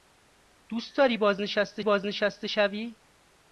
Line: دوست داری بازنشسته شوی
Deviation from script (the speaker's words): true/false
true